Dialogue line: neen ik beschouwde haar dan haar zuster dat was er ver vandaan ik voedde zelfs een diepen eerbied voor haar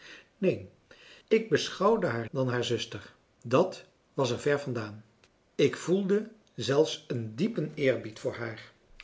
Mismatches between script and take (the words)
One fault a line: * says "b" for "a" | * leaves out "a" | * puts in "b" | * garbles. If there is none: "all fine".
all fine